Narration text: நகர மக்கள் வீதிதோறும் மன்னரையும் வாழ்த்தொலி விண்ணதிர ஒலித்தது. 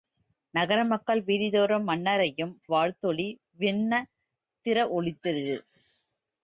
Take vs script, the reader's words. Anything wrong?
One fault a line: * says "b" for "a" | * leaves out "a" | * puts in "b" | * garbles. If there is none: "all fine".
all fine